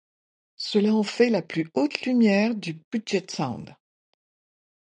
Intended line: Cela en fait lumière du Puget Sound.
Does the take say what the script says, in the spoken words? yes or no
no